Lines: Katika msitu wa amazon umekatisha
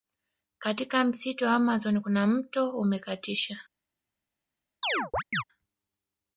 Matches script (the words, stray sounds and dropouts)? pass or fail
fail